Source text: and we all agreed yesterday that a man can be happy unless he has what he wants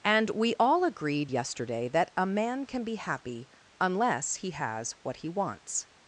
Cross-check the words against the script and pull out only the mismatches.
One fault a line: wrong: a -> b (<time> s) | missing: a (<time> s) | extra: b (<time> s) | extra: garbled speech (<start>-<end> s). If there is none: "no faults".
no faults